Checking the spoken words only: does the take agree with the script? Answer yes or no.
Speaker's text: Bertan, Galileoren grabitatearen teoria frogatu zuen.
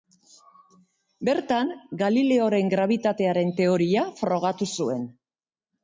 yes